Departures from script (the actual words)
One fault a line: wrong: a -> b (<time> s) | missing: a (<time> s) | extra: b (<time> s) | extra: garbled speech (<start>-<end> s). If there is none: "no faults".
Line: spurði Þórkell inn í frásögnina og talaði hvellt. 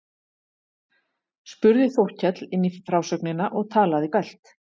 no faults